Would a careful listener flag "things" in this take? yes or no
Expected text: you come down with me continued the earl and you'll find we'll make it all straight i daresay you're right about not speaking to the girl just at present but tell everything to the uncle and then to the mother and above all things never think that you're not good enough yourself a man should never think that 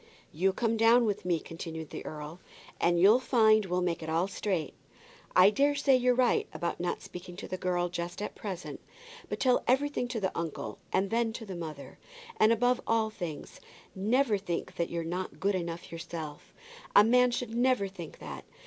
no